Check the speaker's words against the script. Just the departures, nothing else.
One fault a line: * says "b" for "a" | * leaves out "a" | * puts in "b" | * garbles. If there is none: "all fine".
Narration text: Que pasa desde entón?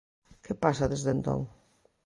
all fine